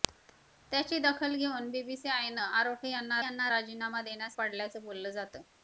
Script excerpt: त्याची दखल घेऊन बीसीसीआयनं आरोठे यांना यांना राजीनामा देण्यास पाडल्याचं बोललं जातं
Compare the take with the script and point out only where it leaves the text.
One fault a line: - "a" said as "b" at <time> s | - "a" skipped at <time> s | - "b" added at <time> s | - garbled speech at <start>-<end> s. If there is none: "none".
none